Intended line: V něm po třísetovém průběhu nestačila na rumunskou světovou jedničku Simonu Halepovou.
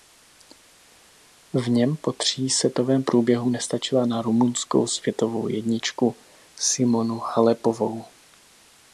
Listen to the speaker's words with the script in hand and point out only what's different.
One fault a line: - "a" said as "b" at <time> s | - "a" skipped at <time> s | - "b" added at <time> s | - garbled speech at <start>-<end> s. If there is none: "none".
none